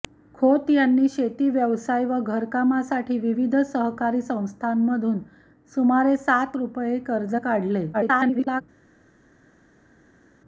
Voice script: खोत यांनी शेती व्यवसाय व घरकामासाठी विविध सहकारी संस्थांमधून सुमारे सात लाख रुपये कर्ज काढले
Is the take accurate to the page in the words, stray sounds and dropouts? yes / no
no